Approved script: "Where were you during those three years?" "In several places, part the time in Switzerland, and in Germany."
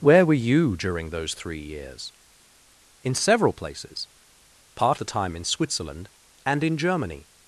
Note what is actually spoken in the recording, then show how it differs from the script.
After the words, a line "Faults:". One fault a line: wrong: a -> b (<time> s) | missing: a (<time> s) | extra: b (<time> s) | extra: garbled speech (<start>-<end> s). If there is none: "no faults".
"Where were you during those three years?" "In several places, part the time in Switzerland, and in Germany."
Faults:
no faults